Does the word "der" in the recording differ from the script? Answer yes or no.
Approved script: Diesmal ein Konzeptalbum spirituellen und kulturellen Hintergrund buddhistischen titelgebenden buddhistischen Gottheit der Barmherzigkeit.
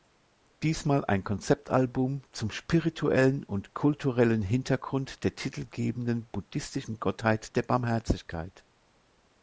no